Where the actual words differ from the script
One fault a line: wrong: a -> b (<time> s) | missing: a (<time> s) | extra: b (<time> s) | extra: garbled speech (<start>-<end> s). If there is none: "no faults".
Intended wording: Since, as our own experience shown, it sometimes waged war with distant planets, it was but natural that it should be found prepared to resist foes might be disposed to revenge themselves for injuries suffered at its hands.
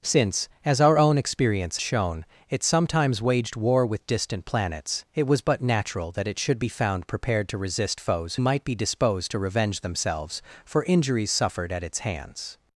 no faults